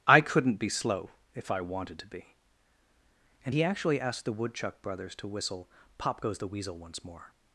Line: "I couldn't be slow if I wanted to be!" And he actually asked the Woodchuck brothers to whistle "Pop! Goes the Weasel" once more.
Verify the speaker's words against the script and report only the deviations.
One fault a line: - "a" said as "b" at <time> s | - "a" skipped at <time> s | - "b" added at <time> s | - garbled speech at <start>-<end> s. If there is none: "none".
none